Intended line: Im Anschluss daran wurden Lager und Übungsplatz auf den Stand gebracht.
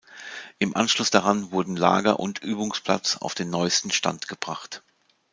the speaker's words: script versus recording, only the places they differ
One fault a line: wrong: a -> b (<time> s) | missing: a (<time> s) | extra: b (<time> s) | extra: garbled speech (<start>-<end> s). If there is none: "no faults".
extra: neuesten (3.5 s)